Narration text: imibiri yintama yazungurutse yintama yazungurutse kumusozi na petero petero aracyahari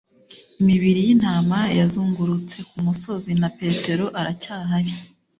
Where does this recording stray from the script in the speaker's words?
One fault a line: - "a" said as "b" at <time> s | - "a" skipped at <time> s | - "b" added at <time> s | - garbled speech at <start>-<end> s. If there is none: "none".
- "yintama yazungurutse" skipped at 2.6 s
- "petero" skipped at 4.0 s